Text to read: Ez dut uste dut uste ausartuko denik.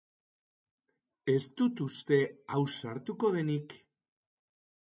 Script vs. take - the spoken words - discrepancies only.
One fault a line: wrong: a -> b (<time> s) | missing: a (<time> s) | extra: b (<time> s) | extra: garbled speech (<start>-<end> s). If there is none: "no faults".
missing: dut uste (2.2 s)